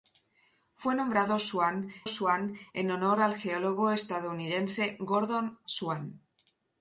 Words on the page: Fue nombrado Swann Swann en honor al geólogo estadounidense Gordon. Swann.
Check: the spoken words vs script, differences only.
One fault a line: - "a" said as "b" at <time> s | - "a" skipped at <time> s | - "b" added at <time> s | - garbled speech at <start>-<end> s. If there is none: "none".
none